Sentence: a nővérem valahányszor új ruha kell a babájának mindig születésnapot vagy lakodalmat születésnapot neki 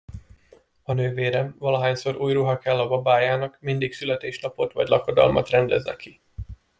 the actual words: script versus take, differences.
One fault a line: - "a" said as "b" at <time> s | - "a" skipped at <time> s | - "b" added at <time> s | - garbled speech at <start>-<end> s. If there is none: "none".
- "születésnapot" said as "rendez" at 5.5 s